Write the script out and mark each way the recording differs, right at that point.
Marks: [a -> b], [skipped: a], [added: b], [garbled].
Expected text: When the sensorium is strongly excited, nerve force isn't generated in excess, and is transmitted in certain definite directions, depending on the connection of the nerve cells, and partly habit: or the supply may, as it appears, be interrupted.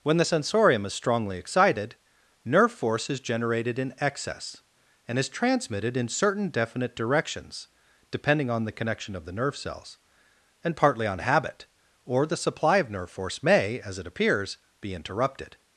When the sensorium is strongly excited, nerve force [isn't -> is] generated in excess, and is transmitted in certain definite directions, depending on the connection of the nerve cells, and partly [added: on] habit: or the supply [added: of nerve force] may, as it appears, be interrupted.